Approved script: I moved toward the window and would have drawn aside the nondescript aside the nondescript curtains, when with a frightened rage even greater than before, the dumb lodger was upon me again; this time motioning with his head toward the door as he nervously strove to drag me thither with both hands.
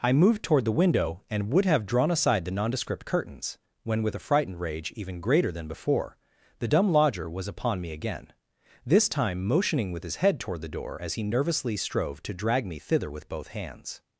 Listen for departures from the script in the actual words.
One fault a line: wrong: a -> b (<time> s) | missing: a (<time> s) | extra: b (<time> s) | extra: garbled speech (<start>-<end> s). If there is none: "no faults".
missing: aside the nondescript (3.0 s)